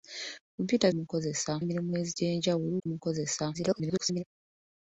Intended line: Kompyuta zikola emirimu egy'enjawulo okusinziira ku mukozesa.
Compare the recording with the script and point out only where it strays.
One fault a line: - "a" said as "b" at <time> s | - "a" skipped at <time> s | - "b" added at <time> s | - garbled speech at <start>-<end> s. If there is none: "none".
- "zikola" said as "mukozesa" at 1.0 s
- "okusinziira" skipped at 2.7 s
- garbled speech at 3.5-4.2 s